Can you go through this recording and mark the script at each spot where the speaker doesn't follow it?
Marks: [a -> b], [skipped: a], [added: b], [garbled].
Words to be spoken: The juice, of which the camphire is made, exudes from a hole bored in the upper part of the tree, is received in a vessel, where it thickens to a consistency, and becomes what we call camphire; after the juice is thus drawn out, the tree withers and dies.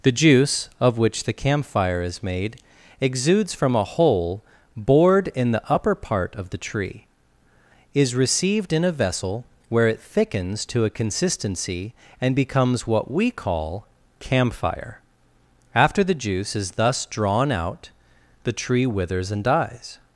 The juice, of which the camphire is made, exudes from a hole bored in the upper part of the tree, is received in a vessel, where it thickens to a consistency, and becomes what we call camphire; after the juice is thus drawn out, the tree withers and dies.